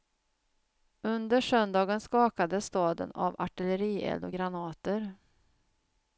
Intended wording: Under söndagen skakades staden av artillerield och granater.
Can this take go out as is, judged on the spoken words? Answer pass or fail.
pass